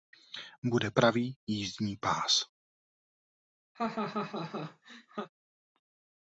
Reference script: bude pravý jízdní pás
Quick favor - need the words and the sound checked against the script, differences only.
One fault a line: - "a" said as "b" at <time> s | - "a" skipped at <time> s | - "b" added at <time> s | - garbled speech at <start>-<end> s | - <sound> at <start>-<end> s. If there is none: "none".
- laugh at 3.7-5.3 s